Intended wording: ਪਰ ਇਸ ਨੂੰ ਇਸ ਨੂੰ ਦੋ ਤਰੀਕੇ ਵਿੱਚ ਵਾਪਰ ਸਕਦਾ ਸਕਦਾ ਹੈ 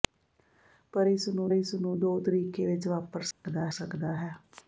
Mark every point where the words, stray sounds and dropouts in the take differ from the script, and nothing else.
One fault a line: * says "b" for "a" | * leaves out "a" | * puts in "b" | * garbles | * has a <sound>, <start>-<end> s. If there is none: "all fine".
* has a dropout, 3.3-3.4 s